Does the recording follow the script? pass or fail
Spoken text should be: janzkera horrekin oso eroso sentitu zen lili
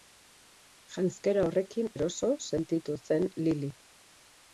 fail